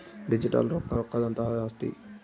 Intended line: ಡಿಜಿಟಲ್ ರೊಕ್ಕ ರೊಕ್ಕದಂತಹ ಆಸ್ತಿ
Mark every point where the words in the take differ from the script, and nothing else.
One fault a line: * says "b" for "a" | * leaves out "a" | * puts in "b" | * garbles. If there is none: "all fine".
all fine